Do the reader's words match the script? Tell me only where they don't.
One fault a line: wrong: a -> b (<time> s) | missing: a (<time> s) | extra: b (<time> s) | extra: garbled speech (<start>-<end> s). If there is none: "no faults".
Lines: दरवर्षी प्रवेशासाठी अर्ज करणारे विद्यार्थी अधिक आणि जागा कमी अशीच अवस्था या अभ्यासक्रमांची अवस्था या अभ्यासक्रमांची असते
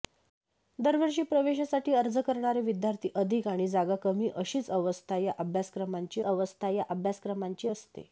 no faults